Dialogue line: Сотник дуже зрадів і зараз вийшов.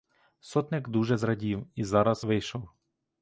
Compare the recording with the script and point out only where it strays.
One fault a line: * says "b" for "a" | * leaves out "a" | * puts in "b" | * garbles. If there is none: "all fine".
all fine